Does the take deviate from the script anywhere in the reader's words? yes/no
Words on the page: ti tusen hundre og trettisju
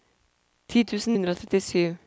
no